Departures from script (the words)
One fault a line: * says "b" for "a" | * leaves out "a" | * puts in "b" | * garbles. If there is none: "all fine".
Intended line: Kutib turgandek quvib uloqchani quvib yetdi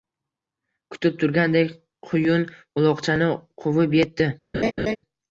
* says "quyun" for "quvib"